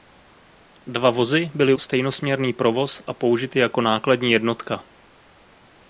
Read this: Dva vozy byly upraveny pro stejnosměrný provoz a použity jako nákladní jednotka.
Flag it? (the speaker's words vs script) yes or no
yes